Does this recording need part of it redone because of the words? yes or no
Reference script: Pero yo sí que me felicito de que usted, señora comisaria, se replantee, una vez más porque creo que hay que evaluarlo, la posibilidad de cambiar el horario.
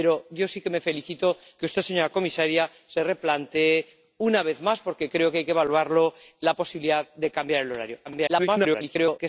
yes